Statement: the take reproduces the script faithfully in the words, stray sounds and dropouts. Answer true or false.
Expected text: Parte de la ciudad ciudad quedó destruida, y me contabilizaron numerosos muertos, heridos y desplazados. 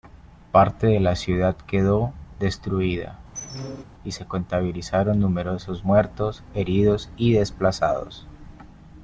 false